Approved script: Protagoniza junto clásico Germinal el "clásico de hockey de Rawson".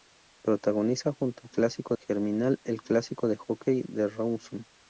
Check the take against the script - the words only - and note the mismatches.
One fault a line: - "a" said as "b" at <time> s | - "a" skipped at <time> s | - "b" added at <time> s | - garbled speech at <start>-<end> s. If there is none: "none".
none